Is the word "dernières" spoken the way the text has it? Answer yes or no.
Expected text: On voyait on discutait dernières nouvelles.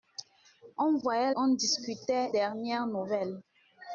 yes